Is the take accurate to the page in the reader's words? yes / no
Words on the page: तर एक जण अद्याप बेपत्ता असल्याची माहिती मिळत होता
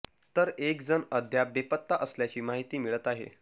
no